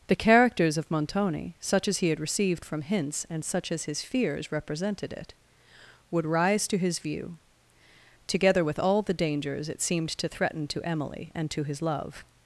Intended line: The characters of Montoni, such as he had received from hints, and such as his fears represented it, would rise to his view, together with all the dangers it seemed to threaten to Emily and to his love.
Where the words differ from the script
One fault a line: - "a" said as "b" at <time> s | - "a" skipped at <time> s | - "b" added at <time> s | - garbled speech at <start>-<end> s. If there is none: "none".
none